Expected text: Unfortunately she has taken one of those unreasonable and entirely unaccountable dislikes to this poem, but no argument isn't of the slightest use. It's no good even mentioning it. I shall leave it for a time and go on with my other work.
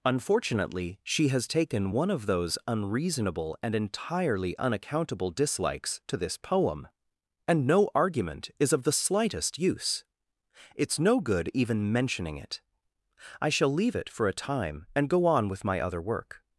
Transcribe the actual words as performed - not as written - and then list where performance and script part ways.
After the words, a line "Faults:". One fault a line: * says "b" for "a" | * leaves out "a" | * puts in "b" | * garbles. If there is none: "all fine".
Unfortunately she has taken one of those unreasonable and entirely unaccountable dislikes to this poem, and no argument is of the slightest use. It's no good even mentioning it. I shall leave it for a time and go on with my other work.
Faults:
* says "and" for "but"
* says "is" for "isn't"